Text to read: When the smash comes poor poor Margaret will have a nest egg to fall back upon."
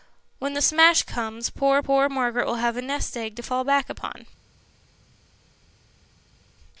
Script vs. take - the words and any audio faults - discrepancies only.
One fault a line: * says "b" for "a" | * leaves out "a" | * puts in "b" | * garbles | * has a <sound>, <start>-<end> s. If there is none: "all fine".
all fine